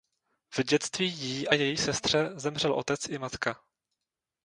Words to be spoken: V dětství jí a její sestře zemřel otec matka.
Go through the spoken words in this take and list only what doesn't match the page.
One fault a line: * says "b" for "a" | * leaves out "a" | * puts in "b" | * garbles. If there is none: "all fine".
* puts in "i"